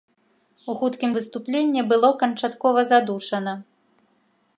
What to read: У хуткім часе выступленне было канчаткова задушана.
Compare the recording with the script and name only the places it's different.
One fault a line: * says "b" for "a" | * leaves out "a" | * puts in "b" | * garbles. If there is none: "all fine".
* leaves out "часе"